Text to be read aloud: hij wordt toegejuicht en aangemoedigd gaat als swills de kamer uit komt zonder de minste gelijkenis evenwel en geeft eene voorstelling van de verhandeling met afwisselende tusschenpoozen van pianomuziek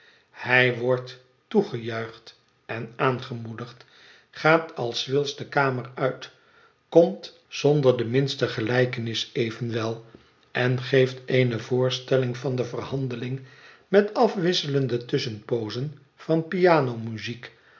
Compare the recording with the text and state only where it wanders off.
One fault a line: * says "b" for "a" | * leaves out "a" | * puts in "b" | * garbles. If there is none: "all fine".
all fine